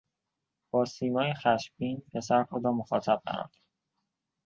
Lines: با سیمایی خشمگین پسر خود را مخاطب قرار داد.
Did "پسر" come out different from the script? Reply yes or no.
no